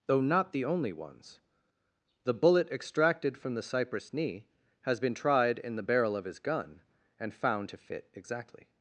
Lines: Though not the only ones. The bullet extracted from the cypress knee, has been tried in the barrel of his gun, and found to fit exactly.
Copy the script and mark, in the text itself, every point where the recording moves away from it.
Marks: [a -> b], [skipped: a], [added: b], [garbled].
Though not the only ones. The bullet extracted from the cypress knee, has been tried in the barrel of his gun, and found to fit exactly.